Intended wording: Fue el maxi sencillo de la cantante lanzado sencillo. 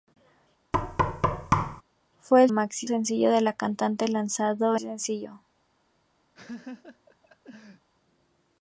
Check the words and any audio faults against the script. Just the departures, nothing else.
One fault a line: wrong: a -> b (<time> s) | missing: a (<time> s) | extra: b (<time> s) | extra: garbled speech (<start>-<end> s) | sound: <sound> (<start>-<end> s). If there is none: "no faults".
sound: thud (0.7-1.8 s)
sound: laugh (6.3-7.9 s)